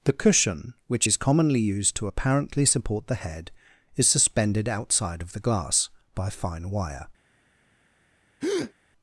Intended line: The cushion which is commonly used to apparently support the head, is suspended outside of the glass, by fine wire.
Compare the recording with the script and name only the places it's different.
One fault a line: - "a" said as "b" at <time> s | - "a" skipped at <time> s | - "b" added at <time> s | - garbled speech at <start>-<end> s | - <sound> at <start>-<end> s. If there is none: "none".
- breath at 8.4-8.7 s